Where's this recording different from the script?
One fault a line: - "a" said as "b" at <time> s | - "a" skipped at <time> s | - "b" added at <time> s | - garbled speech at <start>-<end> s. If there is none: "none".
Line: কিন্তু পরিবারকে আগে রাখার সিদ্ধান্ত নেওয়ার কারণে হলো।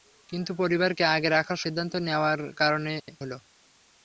none